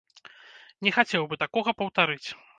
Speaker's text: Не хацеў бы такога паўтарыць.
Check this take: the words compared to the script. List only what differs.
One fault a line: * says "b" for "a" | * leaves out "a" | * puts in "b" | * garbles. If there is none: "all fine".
all fine